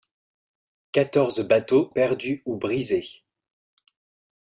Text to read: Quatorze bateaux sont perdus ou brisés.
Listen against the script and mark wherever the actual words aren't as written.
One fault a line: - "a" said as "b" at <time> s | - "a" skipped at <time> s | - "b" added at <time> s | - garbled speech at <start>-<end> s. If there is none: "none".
- "sont" skipped at 1.9 s